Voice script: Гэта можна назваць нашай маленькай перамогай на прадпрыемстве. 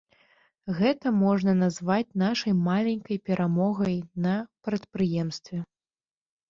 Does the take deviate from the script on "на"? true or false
false